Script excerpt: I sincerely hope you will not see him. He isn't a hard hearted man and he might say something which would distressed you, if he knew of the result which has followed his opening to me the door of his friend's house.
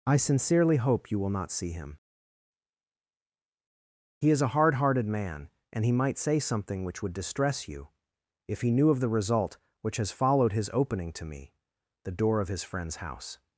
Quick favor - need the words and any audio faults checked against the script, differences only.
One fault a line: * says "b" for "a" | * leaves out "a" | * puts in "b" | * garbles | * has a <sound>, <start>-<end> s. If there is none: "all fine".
* says "is" for "isn't"
* says "distress" for "distressed"